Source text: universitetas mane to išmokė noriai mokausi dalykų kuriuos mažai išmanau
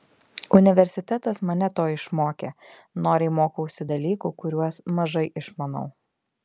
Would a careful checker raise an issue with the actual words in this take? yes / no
no